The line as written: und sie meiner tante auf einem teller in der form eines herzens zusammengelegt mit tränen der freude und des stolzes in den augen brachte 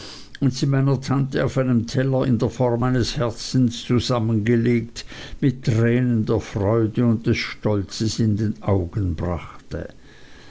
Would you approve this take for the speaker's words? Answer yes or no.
yes